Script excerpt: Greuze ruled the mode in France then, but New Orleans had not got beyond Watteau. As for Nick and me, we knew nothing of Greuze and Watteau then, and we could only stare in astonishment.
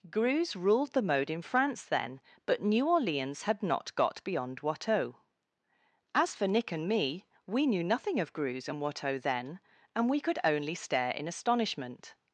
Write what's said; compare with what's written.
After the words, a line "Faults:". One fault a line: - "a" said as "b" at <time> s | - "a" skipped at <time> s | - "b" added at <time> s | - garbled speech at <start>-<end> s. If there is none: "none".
Greuze ruled the mode in France then, but New Orleans had not got beyond Watteau. As for Nick and me, we knew nothing of Greuze and Watteau then, and we could only stare in astonishment.
Faults:
none